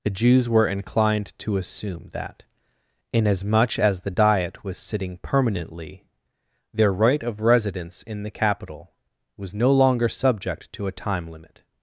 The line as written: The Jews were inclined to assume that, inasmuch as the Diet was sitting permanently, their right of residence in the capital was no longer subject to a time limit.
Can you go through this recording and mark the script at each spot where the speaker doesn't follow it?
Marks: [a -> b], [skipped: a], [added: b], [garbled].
The Jews were inclined to assume that, inasmuch as the Diet was sitting permanently, their right of residence in the capital was no longer subject to a time limit.